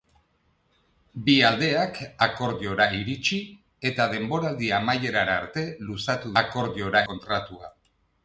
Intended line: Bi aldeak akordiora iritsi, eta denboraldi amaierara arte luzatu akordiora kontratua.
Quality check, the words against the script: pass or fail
pass